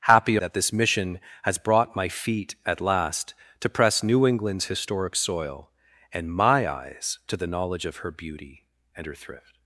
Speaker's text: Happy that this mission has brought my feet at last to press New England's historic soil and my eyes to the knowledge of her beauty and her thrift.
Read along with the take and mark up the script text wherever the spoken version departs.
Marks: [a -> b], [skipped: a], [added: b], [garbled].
Happy that this mission has brought my feet at last to press New England's historic soil and my eyes to the knowledge of her beauty and her thrift.